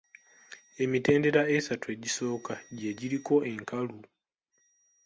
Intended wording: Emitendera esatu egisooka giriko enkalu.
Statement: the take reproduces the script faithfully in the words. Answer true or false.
false